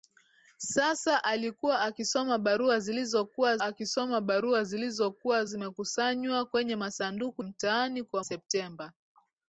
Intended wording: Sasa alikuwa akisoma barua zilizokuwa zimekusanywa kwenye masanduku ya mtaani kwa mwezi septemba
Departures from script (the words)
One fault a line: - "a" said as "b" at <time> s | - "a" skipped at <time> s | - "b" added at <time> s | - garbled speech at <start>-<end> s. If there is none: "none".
- "akisoma barua zilizokuwa" added at 3.6 s
- "ya" skipped at 7.4 s
- "mwezi" skipped at 8.2 s